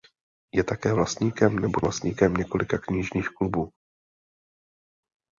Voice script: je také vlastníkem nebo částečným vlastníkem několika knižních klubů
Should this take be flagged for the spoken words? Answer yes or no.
yes